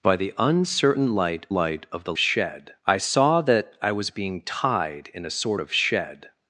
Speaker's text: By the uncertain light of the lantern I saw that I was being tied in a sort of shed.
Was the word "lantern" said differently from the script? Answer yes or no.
yes